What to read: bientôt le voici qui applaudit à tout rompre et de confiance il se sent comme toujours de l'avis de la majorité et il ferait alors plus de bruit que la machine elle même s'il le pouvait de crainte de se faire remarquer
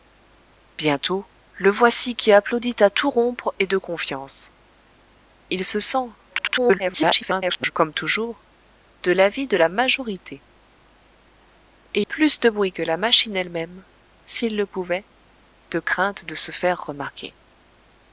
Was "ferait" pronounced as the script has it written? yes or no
no